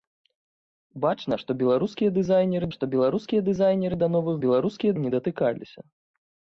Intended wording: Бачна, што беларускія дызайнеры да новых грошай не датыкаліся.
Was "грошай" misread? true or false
true